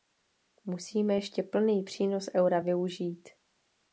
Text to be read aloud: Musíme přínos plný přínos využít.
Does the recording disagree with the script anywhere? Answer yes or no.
yes